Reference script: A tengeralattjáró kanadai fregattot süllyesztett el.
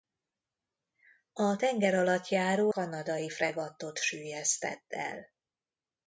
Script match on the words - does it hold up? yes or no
yes